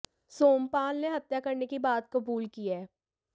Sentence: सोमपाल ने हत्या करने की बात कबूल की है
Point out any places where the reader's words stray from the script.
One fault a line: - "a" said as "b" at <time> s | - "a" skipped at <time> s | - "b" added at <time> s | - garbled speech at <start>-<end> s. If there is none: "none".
none